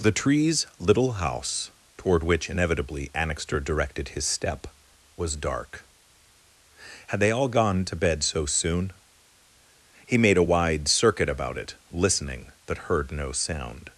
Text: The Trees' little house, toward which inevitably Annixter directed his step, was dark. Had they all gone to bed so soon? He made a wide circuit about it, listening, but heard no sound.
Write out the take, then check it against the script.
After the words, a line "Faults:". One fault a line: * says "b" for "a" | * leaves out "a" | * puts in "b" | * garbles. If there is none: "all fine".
The Trees' little house, toward which inevitably Annixter directed his step, was dark. Had they all gone to bed so soon? He made a wide circuit about it, listening, but heard no sound.
Faults:
all fine